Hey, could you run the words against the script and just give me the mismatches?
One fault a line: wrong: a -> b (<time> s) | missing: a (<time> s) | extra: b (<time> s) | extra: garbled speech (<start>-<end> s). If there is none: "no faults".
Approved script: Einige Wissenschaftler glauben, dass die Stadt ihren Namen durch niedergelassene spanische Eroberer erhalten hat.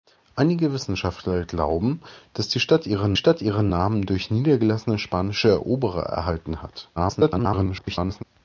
extra: Stadt ihren (3.1 s)
extra: garbled speech (7.0-8.2 s)